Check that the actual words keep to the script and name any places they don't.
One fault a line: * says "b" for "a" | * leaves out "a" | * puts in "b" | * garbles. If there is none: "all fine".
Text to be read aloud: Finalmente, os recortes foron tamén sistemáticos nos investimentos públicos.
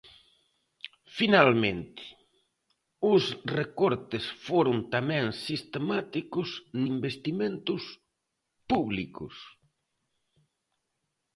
* leaves out "nos"